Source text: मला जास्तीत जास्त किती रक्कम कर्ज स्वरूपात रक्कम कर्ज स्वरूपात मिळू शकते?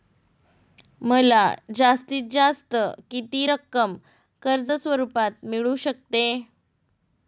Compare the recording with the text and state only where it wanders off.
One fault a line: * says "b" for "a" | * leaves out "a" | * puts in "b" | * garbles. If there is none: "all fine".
* leaves out "रक्कम कर्ज स्वरूपात"